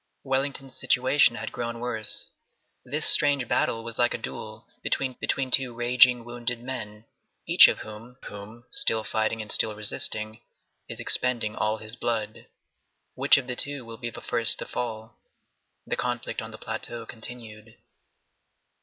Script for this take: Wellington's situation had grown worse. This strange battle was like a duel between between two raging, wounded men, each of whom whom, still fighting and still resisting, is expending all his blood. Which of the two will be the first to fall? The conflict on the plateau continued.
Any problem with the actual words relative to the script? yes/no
no